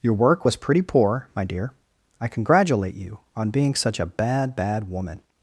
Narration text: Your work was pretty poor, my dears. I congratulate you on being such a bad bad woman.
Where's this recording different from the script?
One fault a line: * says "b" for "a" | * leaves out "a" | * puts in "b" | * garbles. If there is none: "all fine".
* says "dear" for "dears"